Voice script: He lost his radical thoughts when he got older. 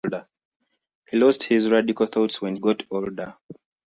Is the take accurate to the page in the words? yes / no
no